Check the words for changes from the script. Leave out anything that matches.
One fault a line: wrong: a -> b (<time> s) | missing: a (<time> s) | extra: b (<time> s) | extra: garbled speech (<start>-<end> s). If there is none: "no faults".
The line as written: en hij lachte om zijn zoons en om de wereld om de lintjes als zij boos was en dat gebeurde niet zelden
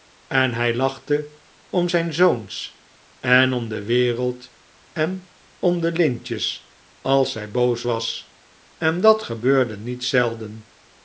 extra: en (4.9 s)